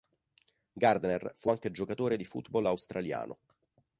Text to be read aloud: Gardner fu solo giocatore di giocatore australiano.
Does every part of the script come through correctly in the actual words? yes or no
no